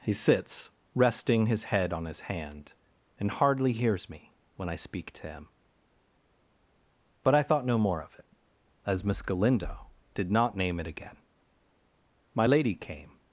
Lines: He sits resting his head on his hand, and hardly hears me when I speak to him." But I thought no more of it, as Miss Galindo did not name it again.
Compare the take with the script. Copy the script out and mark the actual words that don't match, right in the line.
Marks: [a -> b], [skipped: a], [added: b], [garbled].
He sits resting his head on his hand, and hardly hears me when I speak to him." But I thought no more of it, as Miss Galindo did not name it again. [added: My Lady came]